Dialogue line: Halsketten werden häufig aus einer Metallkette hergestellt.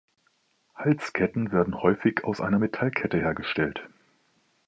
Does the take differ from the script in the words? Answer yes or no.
no